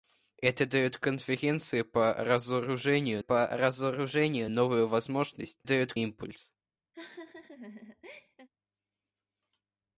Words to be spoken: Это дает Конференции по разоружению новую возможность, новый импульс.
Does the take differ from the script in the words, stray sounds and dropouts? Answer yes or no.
yes